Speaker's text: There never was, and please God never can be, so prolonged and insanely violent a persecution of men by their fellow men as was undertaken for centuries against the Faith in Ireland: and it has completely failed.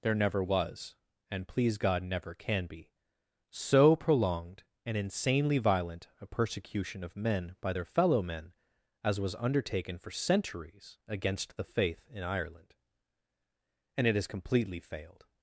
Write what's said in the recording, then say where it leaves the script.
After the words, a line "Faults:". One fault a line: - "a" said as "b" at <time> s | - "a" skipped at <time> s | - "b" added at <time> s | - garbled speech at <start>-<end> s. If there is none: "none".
There never was, and please God never can be, so prolonged and insanely violent a persecution of men by their fellow men as was undertaken for centuries against the Faith in Ireland: and it has completely failed.
Faults:
none